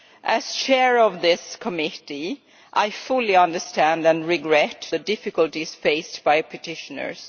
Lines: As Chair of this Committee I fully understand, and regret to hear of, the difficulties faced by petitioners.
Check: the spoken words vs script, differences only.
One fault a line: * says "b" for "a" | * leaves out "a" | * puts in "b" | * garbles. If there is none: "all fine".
* leaves out "to hear of"